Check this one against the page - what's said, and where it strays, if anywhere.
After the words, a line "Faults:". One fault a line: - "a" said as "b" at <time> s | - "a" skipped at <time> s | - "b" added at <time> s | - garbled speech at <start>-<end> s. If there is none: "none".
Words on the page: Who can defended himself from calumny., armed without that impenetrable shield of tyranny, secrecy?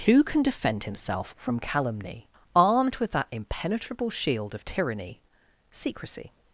Who can defend himself from calumny., armed with that impenetrable shield of tyranny, secrecy?
Faults:
- "defended" said as "defend" at 0.4 s
- "without" said as "with" at 3.0 s